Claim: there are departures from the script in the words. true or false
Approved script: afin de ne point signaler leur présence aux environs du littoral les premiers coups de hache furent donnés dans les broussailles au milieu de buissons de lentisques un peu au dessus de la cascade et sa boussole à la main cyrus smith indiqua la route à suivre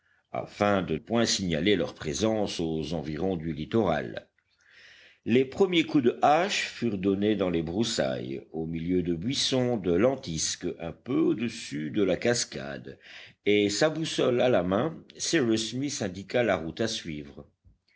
true